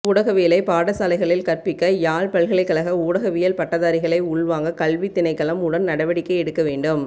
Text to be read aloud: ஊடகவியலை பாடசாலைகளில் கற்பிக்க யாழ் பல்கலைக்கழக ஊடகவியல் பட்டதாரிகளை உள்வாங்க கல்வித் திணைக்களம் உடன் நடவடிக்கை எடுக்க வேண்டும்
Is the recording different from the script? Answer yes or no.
no